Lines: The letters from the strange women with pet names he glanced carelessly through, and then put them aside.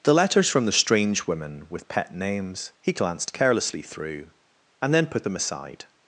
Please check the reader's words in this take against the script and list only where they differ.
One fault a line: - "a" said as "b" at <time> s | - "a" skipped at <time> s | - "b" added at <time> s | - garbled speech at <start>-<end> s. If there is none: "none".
none